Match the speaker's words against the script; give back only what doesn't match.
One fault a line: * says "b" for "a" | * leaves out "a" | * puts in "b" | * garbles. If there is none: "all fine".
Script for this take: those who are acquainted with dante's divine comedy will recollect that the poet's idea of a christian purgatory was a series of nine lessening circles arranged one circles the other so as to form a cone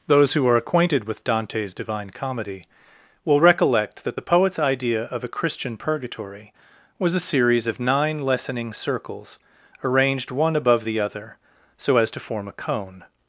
* says "above" for "circles"